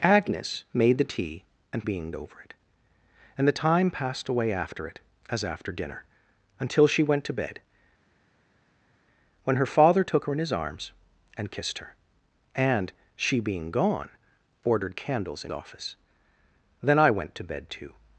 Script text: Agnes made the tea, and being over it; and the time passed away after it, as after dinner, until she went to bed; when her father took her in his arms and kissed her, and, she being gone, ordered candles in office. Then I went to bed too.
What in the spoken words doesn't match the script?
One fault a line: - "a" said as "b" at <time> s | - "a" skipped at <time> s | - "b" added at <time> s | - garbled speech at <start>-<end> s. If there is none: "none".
none